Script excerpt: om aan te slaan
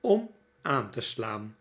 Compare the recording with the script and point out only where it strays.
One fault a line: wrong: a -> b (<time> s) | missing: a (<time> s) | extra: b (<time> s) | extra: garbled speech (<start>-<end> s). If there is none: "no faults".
no faults